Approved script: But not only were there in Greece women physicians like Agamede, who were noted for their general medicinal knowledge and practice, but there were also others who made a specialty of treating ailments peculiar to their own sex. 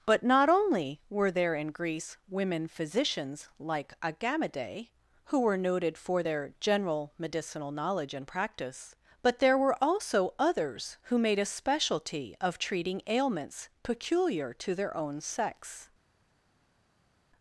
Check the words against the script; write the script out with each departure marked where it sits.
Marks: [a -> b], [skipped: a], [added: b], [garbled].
But not only were there in Greece women physicians like Agamede, who were noted for their general medicinal knowledge and practice, but there were also others who made a specialty of treating ailments peculiar to their own sex.